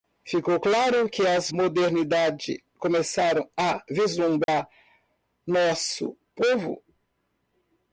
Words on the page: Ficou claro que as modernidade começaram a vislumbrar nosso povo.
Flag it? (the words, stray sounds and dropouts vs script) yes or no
yes